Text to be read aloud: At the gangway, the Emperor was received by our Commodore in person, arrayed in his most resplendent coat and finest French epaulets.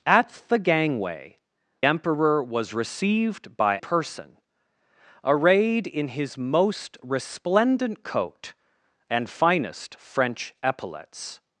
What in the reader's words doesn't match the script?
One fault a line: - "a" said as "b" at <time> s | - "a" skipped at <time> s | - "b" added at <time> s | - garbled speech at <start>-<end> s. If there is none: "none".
- "the" skipped at 1.4 s
- "our Commodore in" skipped at 3.8 s